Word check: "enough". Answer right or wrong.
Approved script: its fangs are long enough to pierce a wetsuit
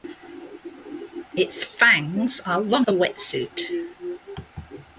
wrong